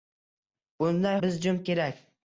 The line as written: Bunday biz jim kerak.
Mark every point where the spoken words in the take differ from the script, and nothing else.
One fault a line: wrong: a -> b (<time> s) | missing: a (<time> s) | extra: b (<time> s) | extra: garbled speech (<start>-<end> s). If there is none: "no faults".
no faults